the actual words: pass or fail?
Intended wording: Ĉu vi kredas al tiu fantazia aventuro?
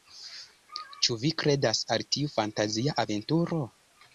pass